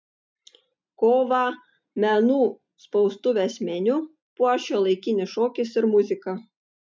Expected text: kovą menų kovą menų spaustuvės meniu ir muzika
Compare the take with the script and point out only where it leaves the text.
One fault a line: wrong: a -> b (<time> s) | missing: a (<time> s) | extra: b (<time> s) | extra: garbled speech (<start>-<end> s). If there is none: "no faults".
wrong: kovą menų spaustuvės meniu -> spaustuvės meniu puoš šiuolaikinis šokis (2.8 s)